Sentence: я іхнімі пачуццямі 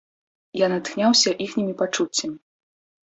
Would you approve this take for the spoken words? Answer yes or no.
no